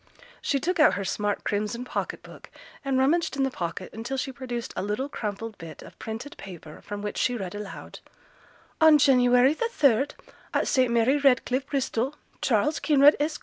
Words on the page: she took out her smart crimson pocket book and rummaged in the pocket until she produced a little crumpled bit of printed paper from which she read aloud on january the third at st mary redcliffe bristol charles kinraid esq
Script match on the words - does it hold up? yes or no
yes